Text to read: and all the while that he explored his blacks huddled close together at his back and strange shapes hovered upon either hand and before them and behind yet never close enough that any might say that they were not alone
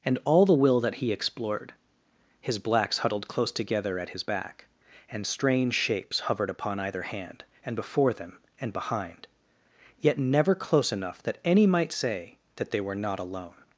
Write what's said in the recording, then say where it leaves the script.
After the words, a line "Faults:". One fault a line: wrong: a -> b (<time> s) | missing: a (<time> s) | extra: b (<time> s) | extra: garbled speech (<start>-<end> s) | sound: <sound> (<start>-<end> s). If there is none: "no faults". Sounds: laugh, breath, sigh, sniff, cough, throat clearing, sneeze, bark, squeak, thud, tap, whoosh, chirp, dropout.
and all the will that he explored his blacks huddled close together at his back and strange shapes hovered upon either hand and before them and behind yet never close enough that any might say that they were not alone
Faults:
wrong: while -> will (0.5 s)